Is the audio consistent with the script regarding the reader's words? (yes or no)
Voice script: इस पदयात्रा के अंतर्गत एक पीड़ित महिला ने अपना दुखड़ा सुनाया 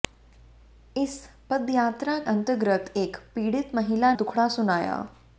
no